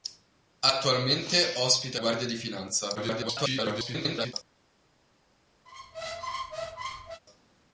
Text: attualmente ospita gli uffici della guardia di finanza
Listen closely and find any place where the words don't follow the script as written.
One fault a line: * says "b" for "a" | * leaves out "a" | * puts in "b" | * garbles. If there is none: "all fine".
* leaves out "gli uffici della"
* garbles